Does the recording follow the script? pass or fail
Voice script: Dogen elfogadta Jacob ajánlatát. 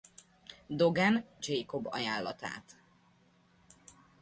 fail